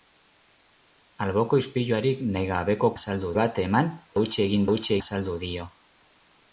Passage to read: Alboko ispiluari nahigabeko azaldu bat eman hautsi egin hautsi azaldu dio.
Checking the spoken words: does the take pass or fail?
pass